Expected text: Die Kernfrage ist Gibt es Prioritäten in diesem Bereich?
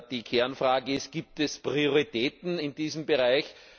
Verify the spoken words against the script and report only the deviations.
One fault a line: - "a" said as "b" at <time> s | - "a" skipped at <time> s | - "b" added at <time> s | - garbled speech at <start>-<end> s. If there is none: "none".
none